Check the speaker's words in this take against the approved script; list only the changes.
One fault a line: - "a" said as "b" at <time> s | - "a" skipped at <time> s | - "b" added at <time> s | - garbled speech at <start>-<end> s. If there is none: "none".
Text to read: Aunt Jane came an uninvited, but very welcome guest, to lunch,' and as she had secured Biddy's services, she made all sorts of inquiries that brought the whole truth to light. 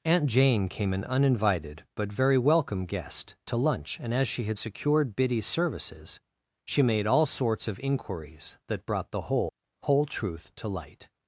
- "whole" added at 9.8 s